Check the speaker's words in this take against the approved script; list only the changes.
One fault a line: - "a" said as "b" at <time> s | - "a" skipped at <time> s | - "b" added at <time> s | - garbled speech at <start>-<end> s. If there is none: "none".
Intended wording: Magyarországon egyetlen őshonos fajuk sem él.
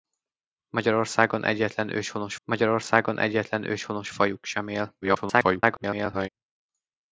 - "magyarországon egyetlen őshonos" added at 2.4 s
- garbled speech at 5.0-6.3 s